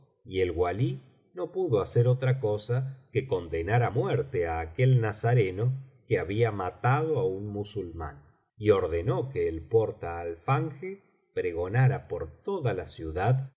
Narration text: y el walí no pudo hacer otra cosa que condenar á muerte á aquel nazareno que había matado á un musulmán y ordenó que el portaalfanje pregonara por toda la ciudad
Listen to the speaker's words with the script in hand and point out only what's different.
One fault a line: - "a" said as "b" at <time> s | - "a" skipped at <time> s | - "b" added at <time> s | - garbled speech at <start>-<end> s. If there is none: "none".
none